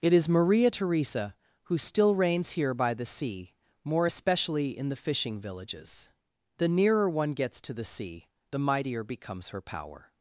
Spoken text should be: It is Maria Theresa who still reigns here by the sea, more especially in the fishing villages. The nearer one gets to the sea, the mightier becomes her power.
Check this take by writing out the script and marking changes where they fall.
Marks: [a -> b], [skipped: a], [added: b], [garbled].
It is Maria Theresa who still reigns here by the sea, more especially in the fishing villages. The nearer one gets to the sea, the mightier becomes her power.